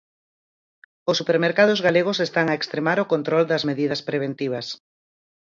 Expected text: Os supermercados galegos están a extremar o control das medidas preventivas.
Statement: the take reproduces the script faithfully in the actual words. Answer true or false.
true